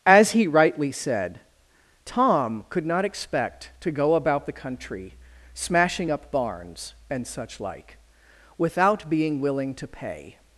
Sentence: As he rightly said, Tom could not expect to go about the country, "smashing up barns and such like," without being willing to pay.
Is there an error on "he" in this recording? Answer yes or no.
no